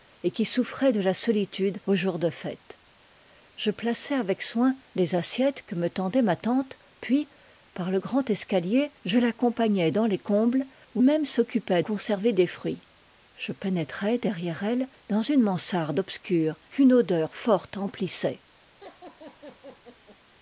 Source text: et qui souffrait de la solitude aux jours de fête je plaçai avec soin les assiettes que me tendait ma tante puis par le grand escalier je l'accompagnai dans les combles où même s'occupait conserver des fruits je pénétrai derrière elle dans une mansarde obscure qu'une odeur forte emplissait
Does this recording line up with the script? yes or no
yes